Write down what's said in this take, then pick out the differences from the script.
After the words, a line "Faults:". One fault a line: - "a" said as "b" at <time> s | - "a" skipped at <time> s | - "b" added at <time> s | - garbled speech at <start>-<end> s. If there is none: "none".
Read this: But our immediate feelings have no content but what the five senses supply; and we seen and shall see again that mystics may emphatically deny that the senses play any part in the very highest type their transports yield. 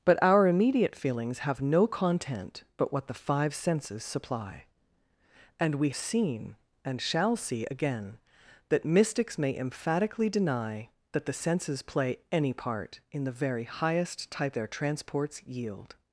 But our immediate feelings have no content but what the five senses supply; and we seen and shall see again that mystics may emphatically deny that the senses play any part in the very highest type their transports yield.
Faults:
none